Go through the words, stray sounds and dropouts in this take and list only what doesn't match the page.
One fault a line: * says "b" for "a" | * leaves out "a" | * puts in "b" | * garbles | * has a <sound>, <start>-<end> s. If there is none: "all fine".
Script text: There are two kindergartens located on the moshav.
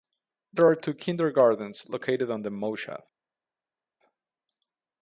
all fine